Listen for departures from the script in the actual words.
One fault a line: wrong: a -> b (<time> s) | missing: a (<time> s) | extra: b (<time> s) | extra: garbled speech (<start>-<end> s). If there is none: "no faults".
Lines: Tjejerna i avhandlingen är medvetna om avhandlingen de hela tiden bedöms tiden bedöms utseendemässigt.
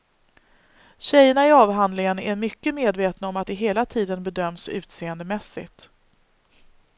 extra: mycket (2.4 s)
wrong: avhandlingen -> att (3.4 s)
missing: tiden bedöms (4.7 s)